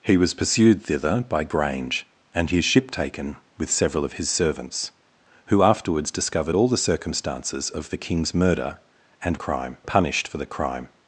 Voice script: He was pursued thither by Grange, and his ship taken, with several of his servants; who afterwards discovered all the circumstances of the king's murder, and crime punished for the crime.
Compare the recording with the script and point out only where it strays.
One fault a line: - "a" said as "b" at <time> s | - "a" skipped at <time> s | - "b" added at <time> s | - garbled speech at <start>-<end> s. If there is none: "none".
none